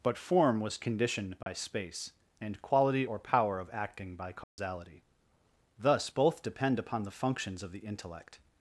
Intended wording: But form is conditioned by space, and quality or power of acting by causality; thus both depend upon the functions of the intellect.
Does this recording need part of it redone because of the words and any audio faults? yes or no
yes